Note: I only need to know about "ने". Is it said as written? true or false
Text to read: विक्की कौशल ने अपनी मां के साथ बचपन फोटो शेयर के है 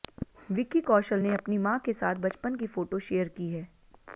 true